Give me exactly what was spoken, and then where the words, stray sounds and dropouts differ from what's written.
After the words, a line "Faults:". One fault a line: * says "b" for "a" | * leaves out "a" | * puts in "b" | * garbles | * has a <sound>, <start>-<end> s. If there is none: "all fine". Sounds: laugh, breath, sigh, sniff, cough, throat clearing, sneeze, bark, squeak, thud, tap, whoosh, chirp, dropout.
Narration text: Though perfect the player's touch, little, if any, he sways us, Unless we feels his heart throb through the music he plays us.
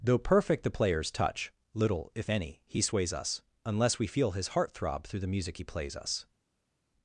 Though perfect the player's touch, little, if any, he sways us, Unless we feel his heart throb through the music he plays us.
Faults:
* says "feel" for "feels"